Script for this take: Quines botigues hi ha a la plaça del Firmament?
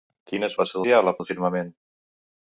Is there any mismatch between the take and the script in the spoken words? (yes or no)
yes